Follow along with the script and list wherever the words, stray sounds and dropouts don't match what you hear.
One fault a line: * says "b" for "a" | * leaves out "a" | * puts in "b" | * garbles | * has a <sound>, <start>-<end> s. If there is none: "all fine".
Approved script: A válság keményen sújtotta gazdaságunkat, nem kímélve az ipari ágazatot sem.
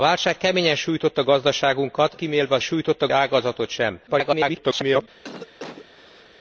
* leaves out "nem"
* says "sújtotta" for "ipari"
* garbles
* has a cough, 5.2-6.3 s